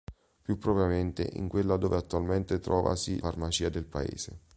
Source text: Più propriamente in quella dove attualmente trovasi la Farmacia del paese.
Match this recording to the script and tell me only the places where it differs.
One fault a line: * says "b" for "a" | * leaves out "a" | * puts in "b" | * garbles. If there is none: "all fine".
* leaves out "la"